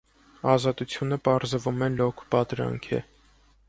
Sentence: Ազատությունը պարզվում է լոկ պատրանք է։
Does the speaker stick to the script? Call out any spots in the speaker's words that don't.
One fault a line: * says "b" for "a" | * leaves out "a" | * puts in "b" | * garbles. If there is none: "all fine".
all fine